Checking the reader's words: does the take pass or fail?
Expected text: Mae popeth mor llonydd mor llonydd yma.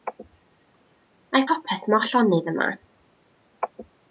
fail